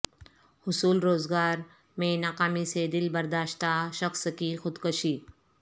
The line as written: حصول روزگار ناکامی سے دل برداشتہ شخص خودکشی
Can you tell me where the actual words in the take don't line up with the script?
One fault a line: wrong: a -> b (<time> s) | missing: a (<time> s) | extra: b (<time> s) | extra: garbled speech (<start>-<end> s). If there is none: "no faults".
extra: میں (2.0 s)
extra: کی (4.4 s)